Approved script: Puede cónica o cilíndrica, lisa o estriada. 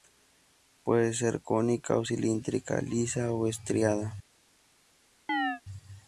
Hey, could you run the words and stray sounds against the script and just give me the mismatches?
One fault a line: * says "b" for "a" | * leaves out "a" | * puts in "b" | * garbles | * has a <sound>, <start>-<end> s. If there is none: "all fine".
* puts in "ser"
* has a chirp, 5.3-5.6 s